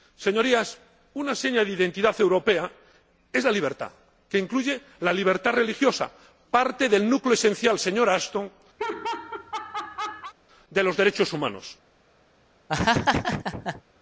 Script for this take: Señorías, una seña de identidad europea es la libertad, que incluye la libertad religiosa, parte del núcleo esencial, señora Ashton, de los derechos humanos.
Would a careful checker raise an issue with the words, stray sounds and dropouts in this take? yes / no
yes